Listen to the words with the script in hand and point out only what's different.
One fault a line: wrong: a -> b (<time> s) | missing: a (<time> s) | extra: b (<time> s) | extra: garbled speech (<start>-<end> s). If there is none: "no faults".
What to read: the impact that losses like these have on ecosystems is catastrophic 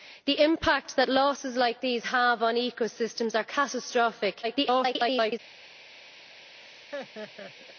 extra: garbled speech (4.4-5.4 s)